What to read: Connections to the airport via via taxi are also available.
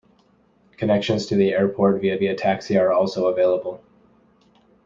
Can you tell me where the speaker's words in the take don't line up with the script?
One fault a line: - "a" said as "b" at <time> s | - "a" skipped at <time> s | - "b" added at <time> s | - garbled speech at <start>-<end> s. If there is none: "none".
none